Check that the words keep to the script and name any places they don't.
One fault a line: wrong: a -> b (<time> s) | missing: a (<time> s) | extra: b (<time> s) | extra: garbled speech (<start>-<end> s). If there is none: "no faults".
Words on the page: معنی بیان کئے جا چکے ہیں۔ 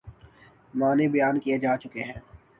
no faults